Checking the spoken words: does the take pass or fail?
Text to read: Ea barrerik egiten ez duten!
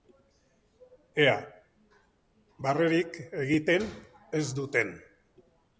pass